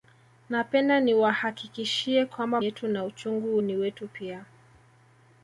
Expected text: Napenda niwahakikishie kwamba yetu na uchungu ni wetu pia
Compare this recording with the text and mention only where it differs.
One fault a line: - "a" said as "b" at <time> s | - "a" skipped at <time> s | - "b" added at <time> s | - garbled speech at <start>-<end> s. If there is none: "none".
none